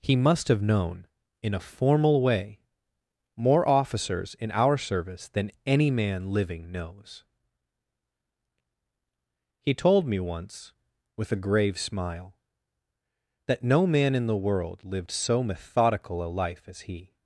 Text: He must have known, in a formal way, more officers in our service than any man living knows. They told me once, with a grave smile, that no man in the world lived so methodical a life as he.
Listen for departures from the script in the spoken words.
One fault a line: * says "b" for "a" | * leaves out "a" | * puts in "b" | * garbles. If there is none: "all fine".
* says "He" for "They"